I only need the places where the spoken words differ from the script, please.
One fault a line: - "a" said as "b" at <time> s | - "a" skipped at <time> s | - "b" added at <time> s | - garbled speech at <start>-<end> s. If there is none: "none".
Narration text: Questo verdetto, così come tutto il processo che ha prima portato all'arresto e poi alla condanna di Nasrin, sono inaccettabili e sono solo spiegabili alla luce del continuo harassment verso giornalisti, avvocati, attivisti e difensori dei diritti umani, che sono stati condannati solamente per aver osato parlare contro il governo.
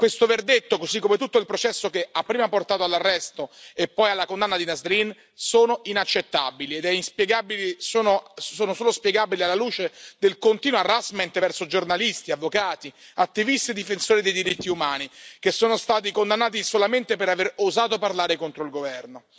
none